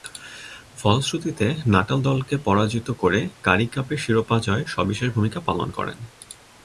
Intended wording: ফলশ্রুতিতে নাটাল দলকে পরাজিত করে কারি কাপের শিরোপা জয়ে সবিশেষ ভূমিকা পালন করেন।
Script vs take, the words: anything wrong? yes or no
no